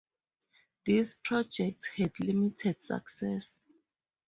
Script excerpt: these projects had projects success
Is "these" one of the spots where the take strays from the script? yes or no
no